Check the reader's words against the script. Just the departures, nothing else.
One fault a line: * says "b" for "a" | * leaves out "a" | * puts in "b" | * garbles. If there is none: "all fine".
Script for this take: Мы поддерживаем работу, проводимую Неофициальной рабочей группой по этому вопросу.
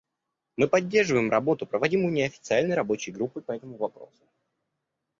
all fine